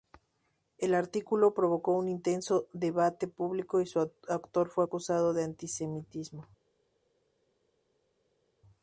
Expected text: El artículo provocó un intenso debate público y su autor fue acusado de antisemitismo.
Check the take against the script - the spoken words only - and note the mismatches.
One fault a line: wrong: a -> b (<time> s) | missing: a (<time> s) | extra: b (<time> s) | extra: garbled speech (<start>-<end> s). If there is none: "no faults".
no faults